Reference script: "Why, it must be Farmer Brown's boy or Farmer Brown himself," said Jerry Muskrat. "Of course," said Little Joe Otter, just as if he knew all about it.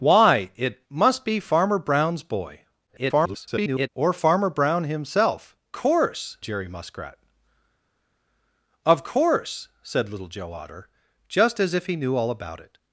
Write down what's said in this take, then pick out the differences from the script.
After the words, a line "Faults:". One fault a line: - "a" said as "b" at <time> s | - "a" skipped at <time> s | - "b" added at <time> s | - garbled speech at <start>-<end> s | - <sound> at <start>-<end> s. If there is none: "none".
"Why, it must be Farmer Brown's boy [garbled] or Farmer Brown himself," course Jerry Muskrat. "Of course," said Little Joe Otter, just as if he knew all about it.
Faults:
- garbled speech at 2.9-3.9 s
- "said" said as "course" at 5.7 s